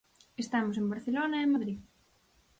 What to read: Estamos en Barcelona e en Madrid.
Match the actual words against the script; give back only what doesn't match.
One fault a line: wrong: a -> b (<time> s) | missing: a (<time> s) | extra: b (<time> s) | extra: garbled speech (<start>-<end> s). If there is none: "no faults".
no faults